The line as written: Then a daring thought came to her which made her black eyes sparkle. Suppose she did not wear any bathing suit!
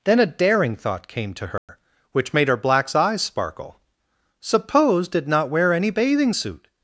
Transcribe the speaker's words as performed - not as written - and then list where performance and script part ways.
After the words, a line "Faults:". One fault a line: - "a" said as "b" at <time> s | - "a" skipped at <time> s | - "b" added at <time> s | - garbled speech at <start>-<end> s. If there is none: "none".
Then a daring thought came to her which made her blacks eyes sparkle. Suppose did not wear any bathing suit!
Faults:
- "black" said as "blacks" at 2.6 s
- "she" skipped at 5.1 s